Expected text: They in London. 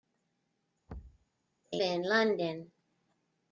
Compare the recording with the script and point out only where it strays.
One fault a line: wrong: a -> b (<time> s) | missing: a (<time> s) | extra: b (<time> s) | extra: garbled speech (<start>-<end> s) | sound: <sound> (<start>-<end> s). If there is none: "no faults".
sound: thud (0.9-1.3 s)